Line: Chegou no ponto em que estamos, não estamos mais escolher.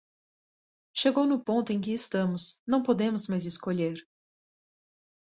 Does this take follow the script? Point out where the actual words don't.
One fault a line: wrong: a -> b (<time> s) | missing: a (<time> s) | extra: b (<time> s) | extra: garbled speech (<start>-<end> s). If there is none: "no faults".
wrong: estamos -> podemos (2.8 s)